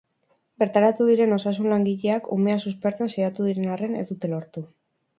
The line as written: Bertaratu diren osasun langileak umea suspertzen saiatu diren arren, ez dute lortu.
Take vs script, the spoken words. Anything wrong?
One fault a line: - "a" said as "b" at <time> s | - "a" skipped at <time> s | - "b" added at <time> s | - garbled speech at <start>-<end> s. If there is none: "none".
none